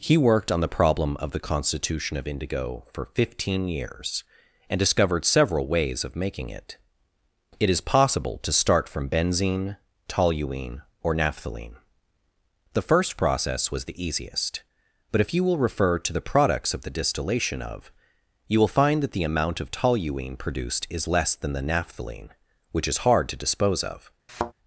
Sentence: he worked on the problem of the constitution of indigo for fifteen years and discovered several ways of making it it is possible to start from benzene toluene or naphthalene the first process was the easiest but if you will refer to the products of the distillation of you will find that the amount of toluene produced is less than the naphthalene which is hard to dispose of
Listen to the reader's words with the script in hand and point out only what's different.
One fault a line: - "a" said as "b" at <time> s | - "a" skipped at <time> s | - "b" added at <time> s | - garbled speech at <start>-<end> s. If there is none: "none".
none